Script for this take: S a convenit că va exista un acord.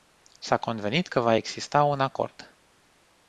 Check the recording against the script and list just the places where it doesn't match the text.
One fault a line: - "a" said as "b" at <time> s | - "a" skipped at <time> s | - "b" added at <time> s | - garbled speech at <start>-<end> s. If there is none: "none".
none